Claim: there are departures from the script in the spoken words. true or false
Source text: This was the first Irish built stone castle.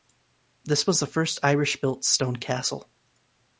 false